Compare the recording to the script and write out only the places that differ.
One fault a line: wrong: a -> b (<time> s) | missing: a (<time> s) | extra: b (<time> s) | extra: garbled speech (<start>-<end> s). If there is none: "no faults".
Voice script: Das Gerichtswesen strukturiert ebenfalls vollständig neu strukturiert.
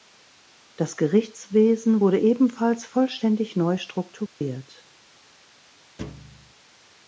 wrong: strukturiert -> wurde (2.0 s)